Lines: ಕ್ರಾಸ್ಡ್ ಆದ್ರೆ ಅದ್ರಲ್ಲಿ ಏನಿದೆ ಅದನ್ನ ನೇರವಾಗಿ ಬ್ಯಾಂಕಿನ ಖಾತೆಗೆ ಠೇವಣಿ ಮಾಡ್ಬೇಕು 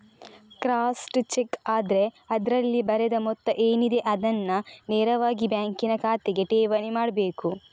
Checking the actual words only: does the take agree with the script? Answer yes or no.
no